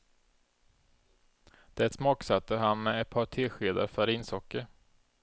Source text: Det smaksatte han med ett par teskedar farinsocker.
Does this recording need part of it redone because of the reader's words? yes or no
no